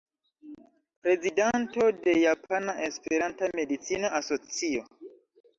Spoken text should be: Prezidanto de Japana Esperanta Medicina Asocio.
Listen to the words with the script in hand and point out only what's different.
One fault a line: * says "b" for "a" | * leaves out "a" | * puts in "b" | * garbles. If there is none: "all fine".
all fine